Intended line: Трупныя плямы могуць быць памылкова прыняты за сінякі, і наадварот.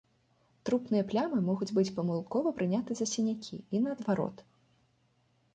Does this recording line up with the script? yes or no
yes